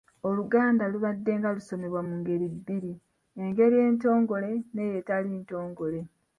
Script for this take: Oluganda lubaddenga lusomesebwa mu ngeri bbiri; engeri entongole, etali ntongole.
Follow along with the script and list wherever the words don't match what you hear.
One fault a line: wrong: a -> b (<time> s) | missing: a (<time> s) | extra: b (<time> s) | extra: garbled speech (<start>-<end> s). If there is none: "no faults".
extra: n'eyo (4.7 s)